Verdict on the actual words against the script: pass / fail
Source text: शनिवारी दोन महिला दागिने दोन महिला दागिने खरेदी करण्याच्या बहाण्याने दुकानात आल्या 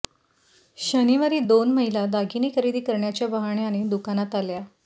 fail